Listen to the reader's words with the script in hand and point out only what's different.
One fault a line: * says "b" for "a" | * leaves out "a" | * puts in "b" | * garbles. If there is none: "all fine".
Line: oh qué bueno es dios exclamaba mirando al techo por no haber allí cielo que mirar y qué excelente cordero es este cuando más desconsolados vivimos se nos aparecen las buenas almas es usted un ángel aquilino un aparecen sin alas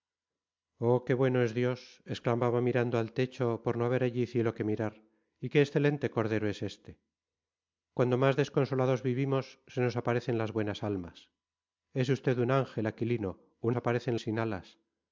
all fine